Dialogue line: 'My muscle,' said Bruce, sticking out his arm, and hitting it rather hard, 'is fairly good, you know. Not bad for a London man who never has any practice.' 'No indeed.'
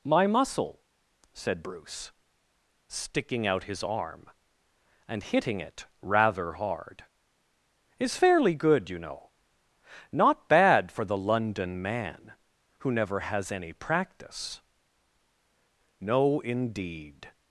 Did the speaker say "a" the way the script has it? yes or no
no